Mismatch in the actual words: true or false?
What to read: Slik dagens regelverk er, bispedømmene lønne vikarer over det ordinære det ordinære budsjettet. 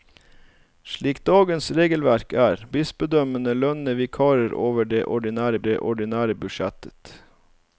false